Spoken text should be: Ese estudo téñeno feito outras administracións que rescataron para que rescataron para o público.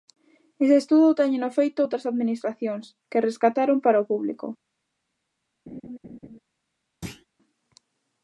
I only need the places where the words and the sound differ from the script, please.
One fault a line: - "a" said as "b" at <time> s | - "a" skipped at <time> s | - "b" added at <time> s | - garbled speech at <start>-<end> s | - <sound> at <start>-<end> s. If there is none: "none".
- "que rescataron para" skipped at 4.0 s
- laugh at 5.7-6.4 s
- thud at 7.0-7.3 s